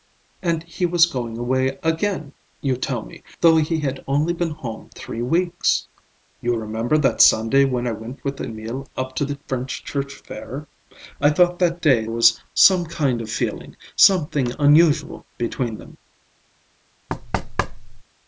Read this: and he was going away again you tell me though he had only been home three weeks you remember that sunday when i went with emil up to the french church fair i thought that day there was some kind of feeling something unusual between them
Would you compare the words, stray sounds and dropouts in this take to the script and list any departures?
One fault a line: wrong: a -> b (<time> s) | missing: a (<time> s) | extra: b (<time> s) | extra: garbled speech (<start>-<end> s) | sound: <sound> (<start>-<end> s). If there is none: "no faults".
missing: there (12.1 s)
sound: thud (17.1-18.0 s)